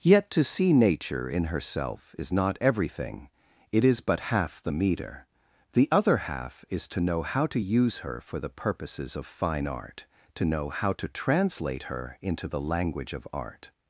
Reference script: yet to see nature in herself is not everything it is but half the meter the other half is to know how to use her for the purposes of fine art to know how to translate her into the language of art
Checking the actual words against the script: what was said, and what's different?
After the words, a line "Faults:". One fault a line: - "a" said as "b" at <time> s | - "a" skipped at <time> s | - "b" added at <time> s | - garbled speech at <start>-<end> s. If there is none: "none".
yet to see nature in herself is not everything it is but half the meter the other half is to know how to use her for the purposes of fine art to know how to translate her into the language of art
Faults:
none